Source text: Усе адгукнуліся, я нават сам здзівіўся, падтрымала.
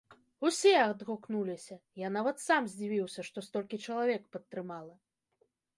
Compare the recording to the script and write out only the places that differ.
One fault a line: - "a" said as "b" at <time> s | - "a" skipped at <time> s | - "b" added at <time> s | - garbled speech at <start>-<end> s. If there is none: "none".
- "што столькі чалавек" added at 3.3 s